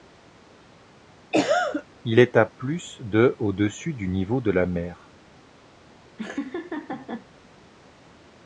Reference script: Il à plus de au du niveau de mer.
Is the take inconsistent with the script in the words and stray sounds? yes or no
yes